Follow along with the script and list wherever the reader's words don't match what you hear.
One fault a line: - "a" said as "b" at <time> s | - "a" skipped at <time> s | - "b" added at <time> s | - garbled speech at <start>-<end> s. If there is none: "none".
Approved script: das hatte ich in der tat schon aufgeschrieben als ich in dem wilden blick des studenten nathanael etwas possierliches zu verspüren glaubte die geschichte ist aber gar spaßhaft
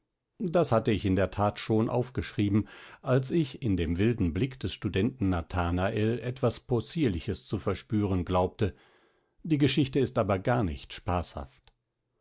- "nicht" added at 10.6 s